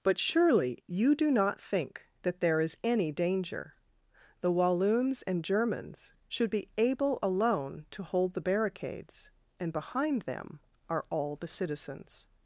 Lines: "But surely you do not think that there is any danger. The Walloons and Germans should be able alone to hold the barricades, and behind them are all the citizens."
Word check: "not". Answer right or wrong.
right